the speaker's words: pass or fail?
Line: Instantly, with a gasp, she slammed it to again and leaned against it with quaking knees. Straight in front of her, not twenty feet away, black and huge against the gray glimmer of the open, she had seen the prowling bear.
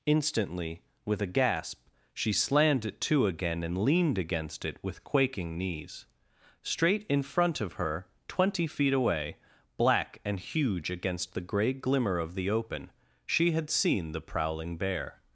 fail